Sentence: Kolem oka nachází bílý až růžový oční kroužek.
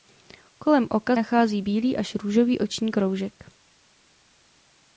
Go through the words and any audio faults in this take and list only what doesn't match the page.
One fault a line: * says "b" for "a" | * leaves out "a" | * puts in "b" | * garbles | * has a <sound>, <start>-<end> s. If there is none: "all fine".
all fine